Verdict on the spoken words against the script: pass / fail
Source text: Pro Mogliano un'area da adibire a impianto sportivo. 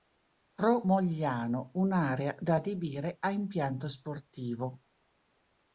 pass